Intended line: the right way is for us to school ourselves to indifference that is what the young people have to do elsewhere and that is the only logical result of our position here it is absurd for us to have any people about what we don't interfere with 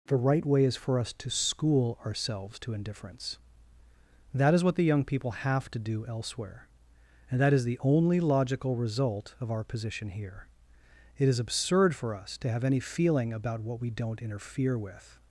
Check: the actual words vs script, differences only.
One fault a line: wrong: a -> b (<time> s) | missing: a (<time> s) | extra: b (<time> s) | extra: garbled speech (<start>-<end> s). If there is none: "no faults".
wrong: people -> feeling (12.8 s)